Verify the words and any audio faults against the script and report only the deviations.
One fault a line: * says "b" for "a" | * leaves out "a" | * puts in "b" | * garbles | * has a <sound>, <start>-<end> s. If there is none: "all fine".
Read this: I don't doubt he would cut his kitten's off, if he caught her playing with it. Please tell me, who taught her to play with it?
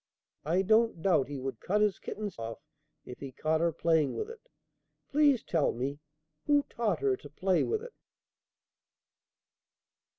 all fine